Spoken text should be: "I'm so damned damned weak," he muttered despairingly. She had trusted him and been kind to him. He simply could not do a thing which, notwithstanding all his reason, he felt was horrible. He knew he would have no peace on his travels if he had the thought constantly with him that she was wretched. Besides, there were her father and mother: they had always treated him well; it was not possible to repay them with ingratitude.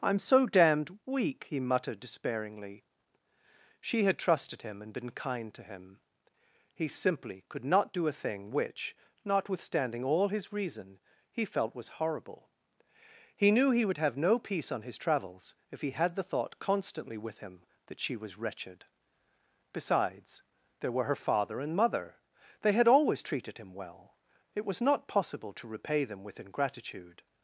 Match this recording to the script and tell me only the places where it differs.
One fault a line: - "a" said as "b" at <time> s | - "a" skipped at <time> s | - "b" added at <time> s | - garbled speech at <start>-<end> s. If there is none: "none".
- "damned" skipped at 1.0 s